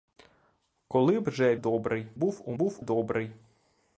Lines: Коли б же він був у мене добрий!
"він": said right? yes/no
no